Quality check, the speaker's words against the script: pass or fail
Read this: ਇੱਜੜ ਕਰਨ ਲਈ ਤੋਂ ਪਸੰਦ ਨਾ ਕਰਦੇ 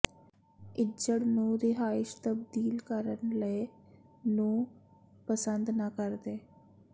fail